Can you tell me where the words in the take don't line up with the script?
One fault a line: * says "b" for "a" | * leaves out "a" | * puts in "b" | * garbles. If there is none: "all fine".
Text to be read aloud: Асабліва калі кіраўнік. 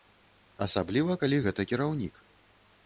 * puts in "гэта"